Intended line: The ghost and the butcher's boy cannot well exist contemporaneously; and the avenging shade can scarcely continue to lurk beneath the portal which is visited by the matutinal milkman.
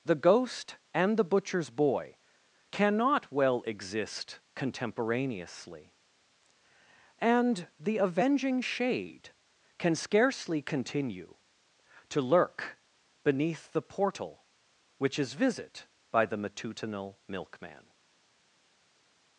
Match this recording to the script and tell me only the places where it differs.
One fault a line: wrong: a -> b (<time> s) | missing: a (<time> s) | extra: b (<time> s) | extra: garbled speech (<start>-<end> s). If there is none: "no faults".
wrong: visited -> visit (15.3 s)